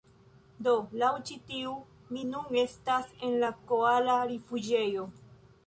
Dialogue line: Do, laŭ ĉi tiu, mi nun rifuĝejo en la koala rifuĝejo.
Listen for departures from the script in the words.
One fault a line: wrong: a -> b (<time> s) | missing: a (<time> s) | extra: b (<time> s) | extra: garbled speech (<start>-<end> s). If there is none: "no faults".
wrong: rifuĝejo -> estas (2.6 s)